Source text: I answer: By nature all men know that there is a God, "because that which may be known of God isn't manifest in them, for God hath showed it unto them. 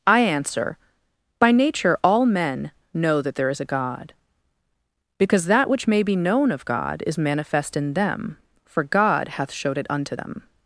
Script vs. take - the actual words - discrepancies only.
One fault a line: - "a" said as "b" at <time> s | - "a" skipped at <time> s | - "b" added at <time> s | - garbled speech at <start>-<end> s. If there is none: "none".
- "isn't" said as "is" at 7.1 s